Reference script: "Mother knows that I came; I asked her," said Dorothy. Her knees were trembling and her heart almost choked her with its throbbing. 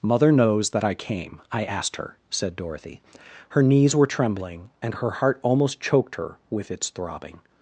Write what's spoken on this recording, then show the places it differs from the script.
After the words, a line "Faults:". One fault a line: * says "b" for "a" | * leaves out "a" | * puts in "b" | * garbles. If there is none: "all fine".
"Mother knows that I came; I asked her," said Dorothy. Her knees were trembling and her heart almost choked her with its throbbing.
Faults:
all fine